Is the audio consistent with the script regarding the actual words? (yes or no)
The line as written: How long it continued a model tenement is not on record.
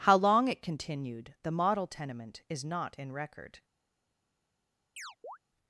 no